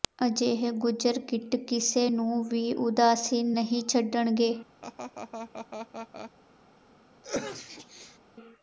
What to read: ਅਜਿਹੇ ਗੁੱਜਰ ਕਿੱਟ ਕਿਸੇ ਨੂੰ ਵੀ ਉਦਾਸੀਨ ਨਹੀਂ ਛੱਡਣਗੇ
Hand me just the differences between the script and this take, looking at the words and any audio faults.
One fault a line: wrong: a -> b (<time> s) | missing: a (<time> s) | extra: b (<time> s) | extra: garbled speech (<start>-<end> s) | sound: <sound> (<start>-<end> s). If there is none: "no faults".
sound: laugh (4.8-6.3 s)
sound: sneeze (7.2-8.2 s)